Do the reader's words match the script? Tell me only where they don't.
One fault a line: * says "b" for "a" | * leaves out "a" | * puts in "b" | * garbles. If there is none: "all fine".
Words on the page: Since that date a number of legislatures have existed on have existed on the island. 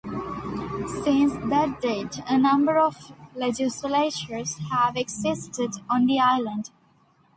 * leaves out "have existed on"